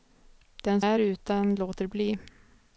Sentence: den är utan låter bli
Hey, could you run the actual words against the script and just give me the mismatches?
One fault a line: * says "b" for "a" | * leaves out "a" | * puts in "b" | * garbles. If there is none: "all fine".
all fine